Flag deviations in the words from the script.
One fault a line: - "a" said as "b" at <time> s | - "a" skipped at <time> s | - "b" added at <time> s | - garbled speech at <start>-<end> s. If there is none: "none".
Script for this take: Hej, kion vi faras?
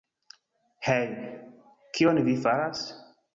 none